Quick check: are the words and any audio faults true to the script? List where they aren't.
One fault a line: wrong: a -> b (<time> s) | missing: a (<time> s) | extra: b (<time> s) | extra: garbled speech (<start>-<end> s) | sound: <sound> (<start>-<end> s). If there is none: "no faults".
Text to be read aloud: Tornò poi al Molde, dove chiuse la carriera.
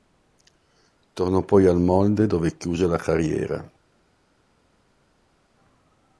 no faults